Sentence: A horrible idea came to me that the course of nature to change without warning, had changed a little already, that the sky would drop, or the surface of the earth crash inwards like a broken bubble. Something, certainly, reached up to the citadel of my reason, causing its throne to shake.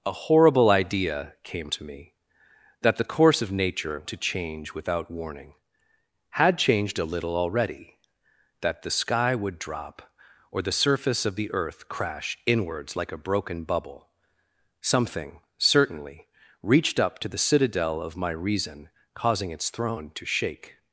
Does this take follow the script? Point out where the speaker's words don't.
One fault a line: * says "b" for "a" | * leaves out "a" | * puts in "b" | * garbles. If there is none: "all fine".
all fine